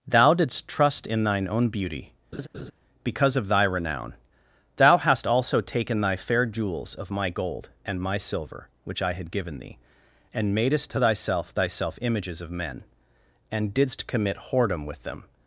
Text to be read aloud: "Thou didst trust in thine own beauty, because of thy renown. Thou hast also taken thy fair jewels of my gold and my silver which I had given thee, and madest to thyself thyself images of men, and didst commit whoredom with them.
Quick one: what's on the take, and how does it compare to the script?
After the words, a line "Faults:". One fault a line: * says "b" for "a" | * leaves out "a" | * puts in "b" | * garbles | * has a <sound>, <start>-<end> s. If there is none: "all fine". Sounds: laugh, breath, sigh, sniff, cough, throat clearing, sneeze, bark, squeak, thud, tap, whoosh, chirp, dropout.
"Thou didst trust in thine own beauty, because of thy renown. Thou hast also taken thy fair jewels of my gold and my silver which I had given thee, and madest to thyself thyself images of men, and didst commit whoredom with them.
Faults:
* has a laugh, 2.3-2.7 s